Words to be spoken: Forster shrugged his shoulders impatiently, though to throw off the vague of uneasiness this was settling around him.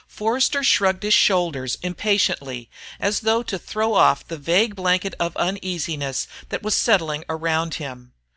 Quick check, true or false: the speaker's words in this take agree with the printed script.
false